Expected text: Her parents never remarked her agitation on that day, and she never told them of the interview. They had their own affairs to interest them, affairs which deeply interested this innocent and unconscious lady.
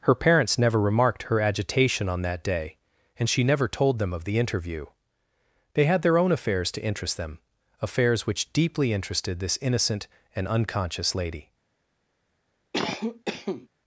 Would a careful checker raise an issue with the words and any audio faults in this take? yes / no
yes